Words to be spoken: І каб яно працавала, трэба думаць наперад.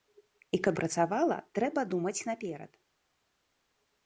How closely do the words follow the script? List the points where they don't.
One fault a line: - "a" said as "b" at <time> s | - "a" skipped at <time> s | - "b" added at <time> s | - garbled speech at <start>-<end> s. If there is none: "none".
- "яно" skipped at 0.8 s